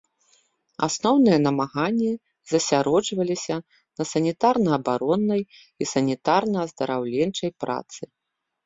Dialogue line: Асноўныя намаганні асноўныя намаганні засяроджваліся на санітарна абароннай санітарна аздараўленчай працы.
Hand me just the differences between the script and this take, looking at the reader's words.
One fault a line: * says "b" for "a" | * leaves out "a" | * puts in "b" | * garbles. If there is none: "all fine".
* leaves out "асноўныя намаганні"
* puts in "і"